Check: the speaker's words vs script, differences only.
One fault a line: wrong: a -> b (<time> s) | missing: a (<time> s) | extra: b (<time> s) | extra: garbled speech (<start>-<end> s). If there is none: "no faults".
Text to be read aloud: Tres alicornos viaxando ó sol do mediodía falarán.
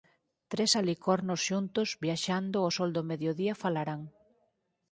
extra: xuntos (1.5 s)